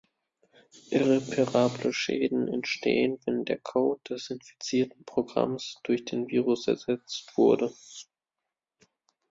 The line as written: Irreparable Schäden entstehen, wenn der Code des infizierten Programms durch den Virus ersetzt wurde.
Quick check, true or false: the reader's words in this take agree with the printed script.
true